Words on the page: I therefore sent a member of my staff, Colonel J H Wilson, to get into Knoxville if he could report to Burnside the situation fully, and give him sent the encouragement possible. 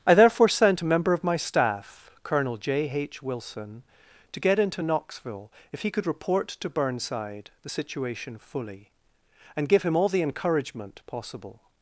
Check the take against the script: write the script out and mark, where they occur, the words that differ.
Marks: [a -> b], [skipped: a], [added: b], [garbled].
I therefore sent a member of my staff, Colonel J H Wilson, to get into Knoxville if he could report to Burnside the situation fully, and give him [sent -> all] the encouragement possible.